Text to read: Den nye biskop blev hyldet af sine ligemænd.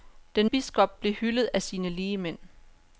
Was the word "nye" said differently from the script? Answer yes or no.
yes